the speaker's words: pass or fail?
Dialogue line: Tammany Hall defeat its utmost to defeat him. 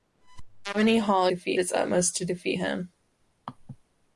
pass